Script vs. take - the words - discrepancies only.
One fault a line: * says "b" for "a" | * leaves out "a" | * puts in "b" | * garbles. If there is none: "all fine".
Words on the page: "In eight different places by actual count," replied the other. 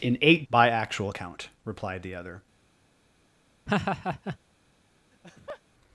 * leaves out "different places"